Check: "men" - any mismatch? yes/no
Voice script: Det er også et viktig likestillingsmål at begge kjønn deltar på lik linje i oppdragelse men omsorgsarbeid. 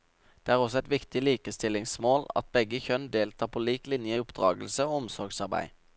yes